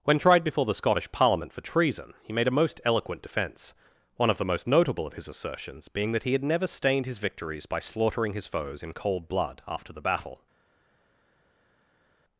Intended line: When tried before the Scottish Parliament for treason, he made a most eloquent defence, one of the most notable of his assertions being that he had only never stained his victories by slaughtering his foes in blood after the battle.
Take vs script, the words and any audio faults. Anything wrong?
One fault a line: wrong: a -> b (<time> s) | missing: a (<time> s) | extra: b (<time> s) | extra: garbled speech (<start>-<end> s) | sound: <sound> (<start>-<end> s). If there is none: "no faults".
missing: only (6.4 s)
extra: cold (8.9 s)